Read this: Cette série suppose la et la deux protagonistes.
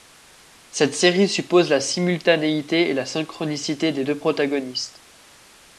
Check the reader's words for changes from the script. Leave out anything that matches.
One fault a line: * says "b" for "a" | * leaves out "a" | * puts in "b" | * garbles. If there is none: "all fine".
* puts in "simultanéité"
* puts in "synchronicité des"